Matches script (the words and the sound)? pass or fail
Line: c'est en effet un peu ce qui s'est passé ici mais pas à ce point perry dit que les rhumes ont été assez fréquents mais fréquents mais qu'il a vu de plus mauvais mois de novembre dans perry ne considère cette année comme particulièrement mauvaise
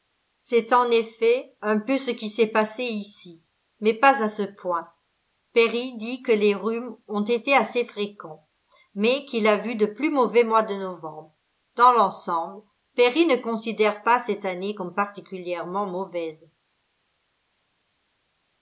fail